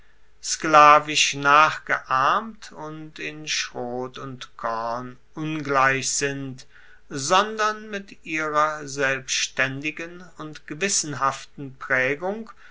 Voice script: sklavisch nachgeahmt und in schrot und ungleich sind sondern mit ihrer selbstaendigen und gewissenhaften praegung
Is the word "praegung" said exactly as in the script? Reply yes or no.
yes